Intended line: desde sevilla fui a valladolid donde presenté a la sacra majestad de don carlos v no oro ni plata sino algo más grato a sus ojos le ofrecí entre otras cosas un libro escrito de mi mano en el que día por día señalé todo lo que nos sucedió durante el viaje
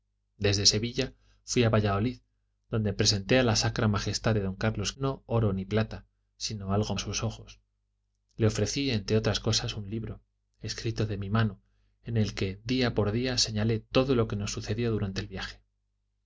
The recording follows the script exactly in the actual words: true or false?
false